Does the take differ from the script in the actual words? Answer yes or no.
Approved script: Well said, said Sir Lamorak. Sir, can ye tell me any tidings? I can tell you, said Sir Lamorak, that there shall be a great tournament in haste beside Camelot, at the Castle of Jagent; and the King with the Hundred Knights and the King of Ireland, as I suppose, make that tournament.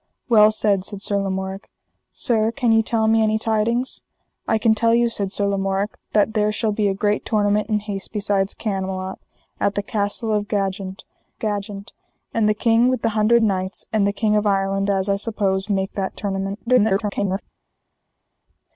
yes